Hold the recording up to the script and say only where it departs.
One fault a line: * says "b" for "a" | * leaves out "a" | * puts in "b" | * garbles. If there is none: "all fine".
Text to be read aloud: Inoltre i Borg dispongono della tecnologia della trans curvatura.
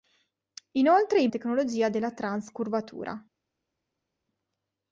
* leaves out "Borg dispongono della"